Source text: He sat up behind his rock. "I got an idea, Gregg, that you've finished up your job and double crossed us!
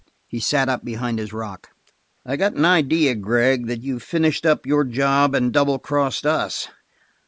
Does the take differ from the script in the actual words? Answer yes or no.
no